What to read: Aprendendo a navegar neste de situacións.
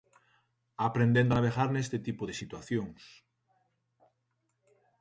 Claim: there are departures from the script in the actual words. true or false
true